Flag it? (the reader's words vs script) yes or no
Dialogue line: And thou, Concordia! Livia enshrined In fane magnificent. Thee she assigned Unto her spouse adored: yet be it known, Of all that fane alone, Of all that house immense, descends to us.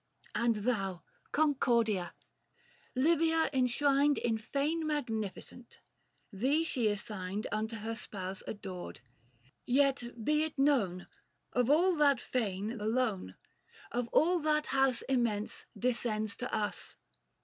no